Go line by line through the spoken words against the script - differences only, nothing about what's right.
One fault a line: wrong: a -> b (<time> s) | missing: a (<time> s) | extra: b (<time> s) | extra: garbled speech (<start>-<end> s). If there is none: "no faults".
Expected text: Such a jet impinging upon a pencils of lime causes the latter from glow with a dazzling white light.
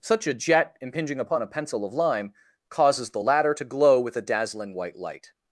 wrong: pencils -> pencil (1.5 s)
wrong: from -> to (3.5 s)